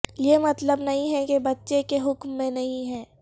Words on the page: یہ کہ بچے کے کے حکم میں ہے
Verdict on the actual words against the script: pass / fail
fail